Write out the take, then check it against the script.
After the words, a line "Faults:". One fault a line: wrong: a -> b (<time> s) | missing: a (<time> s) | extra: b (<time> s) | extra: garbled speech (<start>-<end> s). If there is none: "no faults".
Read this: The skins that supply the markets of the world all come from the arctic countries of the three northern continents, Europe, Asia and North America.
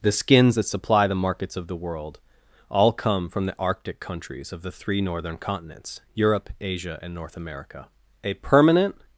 The skins that supply the markets of the world all come from the arctic countries of the three northern continents, Europe, Asia and North America. A permanent
Faults:
extra: A permanent (8.2 s)